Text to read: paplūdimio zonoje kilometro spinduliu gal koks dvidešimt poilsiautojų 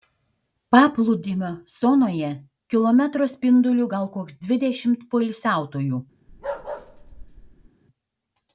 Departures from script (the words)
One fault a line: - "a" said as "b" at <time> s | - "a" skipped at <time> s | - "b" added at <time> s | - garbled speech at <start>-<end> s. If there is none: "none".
none